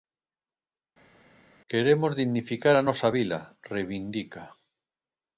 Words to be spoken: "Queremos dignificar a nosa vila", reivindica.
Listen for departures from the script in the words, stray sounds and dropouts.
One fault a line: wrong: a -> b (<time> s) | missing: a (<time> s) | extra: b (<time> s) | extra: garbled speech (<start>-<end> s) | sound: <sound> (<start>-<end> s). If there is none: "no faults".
no faults